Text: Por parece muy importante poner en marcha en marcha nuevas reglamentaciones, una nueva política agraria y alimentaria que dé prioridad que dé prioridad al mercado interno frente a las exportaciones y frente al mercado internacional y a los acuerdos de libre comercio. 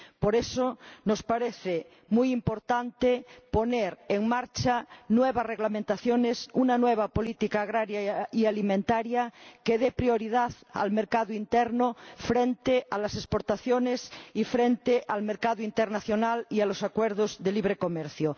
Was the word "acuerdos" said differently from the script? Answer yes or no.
no